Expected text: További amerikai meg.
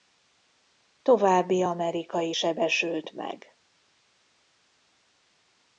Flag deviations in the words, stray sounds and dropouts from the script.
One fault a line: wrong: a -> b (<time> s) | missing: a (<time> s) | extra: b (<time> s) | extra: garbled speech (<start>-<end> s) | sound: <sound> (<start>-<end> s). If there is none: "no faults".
extra: sebesült (2.3 s)